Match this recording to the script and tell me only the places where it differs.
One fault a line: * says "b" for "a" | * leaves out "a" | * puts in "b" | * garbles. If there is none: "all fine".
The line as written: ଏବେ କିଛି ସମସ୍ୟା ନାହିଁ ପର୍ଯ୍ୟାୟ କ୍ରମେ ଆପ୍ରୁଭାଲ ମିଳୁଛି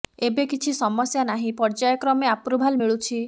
all fine